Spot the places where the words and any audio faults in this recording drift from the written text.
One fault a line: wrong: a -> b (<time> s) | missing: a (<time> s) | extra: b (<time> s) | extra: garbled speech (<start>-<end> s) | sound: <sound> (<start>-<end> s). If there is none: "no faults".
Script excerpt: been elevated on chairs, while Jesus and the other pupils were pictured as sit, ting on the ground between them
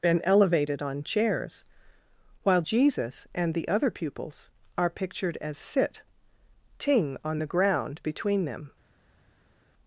wrong: were -> are (4.8 s)